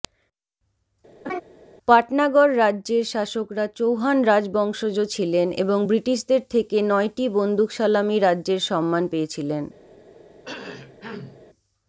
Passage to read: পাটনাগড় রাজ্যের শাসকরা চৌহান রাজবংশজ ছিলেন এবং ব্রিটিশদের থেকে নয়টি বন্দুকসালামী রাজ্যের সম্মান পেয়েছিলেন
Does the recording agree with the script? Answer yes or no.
yes